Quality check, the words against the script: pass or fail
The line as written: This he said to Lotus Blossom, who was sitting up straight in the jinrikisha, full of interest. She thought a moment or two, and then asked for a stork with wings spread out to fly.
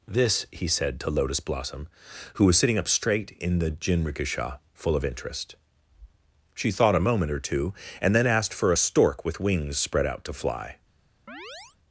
pass